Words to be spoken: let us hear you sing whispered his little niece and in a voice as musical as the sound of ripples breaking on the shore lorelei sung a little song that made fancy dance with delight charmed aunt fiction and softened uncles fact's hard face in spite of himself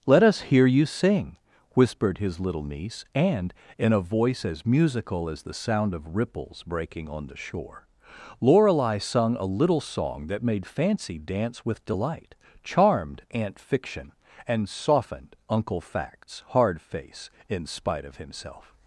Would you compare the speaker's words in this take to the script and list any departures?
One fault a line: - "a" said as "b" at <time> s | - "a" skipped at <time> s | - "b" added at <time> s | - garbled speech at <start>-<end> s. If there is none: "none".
- "uncles" said as "uncle" at 15.5 s